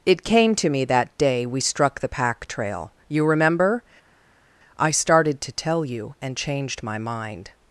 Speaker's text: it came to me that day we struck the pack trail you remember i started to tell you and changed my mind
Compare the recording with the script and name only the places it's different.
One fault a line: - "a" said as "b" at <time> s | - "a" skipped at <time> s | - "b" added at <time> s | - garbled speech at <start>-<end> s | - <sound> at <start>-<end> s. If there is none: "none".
none